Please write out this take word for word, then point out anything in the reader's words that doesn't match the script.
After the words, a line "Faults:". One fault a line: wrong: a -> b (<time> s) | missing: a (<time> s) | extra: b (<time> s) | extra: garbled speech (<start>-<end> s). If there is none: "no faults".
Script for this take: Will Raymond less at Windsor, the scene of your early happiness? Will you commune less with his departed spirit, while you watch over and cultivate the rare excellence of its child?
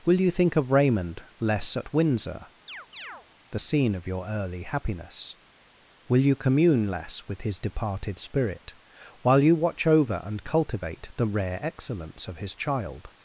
Will you think of Raymond less at Windsor, the scene of your early happiness? Will you commune less with his departed spirit, while you watch over and cultivate the rare excellence of his child?
Faults:
extra: you think of (0.2 s)
wrong: its -> his (12.4 s)